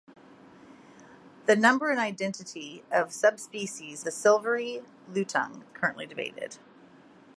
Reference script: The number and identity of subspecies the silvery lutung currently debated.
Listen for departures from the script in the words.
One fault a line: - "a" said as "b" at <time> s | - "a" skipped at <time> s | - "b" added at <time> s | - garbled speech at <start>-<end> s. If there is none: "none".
none